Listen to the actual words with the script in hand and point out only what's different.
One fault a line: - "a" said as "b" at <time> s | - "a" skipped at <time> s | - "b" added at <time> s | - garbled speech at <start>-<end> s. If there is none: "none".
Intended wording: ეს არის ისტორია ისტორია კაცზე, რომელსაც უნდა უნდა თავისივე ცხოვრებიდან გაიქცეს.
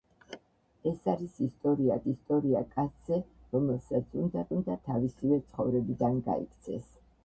none